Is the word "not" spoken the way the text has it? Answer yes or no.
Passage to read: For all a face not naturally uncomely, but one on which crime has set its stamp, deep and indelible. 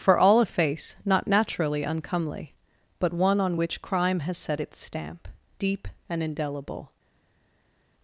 yes